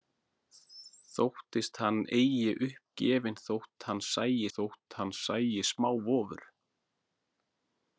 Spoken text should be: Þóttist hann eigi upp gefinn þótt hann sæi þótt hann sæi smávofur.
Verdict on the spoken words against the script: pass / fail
pass